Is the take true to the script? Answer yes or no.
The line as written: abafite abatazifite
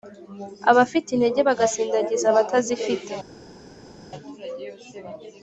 no